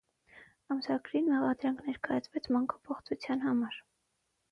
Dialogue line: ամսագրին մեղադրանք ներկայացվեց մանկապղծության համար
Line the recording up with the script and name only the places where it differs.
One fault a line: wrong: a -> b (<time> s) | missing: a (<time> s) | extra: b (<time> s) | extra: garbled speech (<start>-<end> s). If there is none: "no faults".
no faults